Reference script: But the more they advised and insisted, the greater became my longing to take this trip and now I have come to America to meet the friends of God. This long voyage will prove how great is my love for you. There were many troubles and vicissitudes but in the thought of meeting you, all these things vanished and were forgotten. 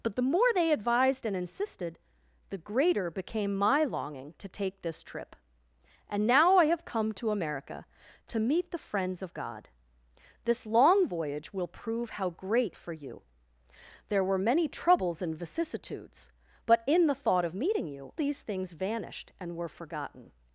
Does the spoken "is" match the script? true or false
false